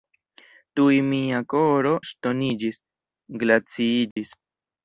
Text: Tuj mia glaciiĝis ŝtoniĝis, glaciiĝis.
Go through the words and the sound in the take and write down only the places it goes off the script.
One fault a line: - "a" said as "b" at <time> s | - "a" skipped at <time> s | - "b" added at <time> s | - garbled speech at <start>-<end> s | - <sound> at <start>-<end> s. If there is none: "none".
- "glaciiĝis" said as "koro" at 1.6 s
- dropout at 4.1-4.2 s